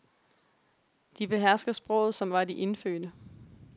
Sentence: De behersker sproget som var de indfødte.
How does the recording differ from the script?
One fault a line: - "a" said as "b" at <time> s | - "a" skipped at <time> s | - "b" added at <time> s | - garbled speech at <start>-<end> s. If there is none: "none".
none